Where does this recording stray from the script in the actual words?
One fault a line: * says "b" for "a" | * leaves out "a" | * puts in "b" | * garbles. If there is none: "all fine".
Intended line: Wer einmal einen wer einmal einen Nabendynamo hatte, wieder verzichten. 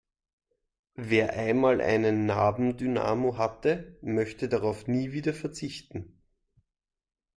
* says "Nabendynamo hatte möchte darauf nie" for "wer einmal einen Nabendynamo hatte"